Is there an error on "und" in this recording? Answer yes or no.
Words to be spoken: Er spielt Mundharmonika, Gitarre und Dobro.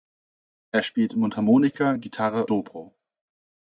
yes